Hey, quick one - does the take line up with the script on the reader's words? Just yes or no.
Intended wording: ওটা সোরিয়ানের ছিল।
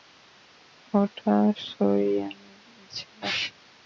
yes